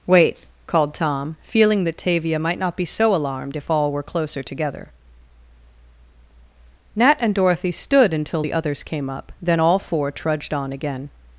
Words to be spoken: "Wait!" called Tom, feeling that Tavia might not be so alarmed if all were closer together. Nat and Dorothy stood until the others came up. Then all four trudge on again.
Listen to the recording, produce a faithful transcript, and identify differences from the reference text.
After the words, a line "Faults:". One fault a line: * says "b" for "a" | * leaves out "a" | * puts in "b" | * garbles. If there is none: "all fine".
"Wait!" called Tom, feeling that Tavia might not be so alarmed if all were closer together. Nat and Dorothy stood until the others came up. Then all four trudged on again.
Faults:
* says "trudged" for "trudge"